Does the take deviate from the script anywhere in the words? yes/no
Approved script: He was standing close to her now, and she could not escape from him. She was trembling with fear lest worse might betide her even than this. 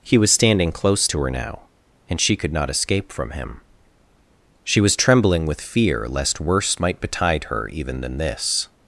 no